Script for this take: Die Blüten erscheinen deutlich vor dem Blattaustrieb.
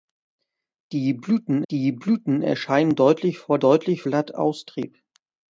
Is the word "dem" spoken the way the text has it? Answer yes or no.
no